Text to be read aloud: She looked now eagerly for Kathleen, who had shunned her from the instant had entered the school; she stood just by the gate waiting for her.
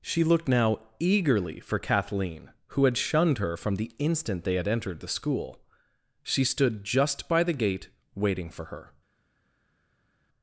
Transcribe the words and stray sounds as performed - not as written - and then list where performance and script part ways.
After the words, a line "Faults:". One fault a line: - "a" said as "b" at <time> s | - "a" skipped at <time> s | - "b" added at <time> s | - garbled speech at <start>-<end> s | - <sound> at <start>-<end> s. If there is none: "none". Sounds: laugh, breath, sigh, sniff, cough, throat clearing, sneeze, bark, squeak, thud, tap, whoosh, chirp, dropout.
She looked now eagerly for Kathleen, who had shunned her from the instant they had entered the school; she stood just by the gate waiting for her.
Faults:
- "they" added at 4.4 s